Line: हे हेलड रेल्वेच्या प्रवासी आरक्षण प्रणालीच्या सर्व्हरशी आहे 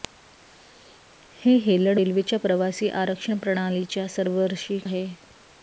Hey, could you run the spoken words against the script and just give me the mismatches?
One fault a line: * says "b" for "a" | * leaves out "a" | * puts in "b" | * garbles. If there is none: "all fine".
all fine